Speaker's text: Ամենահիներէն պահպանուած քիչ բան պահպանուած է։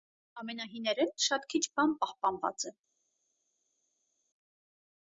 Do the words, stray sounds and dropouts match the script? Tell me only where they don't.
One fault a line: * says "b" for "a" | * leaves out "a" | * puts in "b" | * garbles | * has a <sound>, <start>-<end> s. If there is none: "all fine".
* says "շատ" for "պահպանուած"